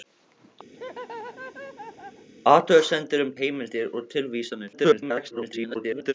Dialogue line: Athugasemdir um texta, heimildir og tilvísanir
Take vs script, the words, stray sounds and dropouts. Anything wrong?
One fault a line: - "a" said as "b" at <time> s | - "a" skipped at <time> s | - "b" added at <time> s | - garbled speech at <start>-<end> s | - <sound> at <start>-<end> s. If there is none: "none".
- laugh at 0.7-2.3 s
- "texta" skipped at 3.3 s
- garbled speech at 4.7-6.1 s